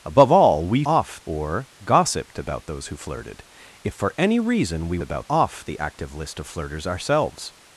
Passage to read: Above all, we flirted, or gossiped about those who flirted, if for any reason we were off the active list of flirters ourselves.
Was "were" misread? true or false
true